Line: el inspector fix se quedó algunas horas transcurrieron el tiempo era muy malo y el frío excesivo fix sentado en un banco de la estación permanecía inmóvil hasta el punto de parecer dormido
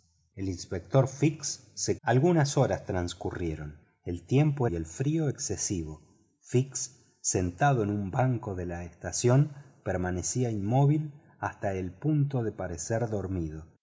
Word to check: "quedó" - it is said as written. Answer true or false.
false